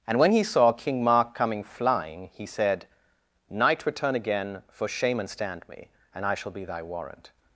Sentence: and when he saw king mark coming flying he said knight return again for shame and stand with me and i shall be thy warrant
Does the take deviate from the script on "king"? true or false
false